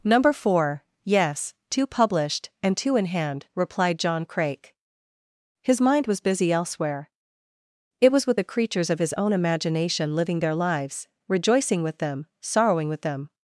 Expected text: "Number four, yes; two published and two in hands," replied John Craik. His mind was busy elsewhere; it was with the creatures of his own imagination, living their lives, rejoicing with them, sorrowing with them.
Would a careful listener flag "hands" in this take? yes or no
yes